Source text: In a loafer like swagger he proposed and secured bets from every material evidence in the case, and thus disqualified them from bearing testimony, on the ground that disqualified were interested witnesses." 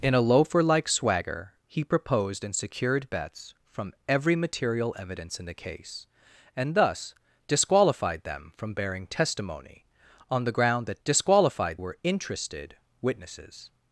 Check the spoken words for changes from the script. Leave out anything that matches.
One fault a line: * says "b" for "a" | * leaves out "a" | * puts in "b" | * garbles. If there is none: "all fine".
all fine